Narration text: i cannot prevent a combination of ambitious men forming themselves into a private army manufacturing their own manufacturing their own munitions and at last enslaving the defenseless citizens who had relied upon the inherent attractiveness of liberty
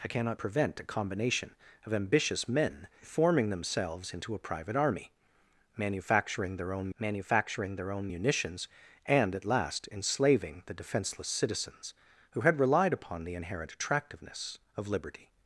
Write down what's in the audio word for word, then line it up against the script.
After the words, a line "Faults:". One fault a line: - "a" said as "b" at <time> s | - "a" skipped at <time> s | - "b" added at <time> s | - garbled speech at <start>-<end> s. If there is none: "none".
i cannot prevent a combination of ambitious men forming themselves into a private army manufacturing their own manufacturing their own munitions and at last enslaving the defenseless citizens who had relied upon the inherent attractiveness of liberty
Faults:
none